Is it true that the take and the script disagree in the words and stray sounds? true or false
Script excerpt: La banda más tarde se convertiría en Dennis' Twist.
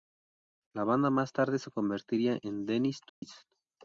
true